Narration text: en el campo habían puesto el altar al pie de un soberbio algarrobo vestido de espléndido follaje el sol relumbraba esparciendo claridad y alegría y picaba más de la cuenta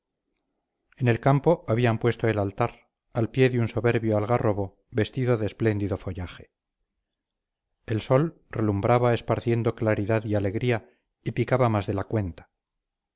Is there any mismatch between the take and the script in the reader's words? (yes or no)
no